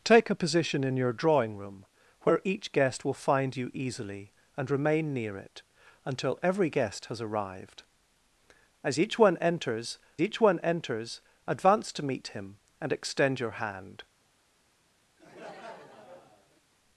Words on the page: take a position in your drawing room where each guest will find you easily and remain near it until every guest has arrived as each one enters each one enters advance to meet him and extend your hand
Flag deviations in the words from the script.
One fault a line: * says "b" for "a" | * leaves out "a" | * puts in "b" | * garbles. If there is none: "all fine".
all fine